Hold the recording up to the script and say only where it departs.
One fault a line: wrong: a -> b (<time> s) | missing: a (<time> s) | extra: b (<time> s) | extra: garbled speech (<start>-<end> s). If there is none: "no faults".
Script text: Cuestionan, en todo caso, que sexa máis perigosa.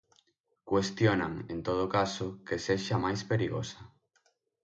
no faults